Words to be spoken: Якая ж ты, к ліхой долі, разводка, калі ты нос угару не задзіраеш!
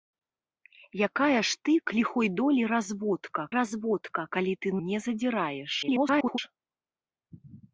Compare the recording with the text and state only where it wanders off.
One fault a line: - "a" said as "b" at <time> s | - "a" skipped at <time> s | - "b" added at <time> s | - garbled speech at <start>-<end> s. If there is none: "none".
- "разводка" added at 3.6 s
- "нос угару" skipped at 4.8 s
- garbled speech at 5.8-6.4 s